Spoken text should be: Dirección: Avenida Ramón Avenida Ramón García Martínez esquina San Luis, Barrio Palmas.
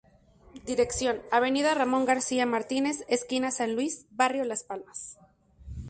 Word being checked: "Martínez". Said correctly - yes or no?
yes